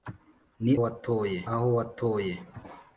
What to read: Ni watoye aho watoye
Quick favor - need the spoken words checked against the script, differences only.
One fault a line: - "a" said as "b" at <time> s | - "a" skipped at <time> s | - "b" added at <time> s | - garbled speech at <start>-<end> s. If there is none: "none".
none